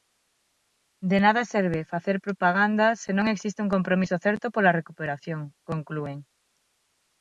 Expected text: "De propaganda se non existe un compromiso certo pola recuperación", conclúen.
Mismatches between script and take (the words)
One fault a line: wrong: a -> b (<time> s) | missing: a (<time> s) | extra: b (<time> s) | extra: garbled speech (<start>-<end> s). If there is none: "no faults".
extra: nada serve facer (1.2 s)